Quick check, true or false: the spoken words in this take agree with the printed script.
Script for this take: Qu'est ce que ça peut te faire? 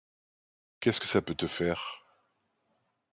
true